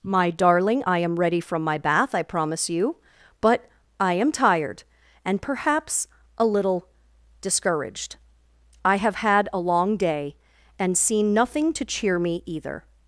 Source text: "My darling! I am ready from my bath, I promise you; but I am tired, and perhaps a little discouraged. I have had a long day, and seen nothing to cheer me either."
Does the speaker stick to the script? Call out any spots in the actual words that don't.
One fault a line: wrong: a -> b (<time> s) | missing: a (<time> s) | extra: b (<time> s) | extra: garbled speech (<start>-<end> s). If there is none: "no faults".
no faults